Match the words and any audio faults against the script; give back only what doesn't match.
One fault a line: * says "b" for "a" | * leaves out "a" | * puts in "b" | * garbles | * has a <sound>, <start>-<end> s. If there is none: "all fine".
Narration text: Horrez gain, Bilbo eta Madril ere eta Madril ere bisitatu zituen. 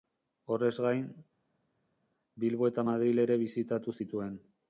* leaves out "eta Madril ere"